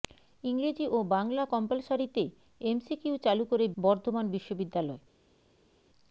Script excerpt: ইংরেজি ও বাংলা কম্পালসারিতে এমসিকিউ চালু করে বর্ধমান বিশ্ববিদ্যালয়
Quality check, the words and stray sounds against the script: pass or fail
pass